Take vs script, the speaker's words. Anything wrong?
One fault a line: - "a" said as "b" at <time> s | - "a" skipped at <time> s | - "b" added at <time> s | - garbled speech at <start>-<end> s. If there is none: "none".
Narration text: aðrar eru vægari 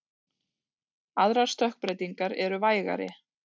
- "stökkbreytingar" added at 1.5 s